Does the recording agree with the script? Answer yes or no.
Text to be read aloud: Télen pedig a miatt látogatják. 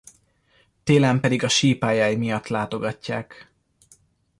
no